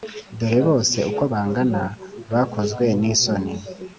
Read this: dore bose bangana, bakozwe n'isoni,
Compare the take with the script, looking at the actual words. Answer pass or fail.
fail